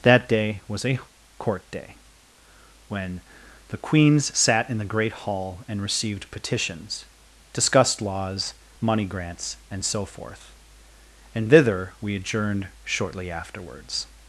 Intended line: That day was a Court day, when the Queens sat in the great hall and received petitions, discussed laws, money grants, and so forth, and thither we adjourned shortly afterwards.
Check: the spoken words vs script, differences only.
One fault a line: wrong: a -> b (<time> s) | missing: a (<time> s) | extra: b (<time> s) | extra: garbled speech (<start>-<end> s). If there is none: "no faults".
no faults